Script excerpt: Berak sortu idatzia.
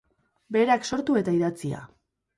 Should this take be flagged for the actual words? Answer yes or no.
yes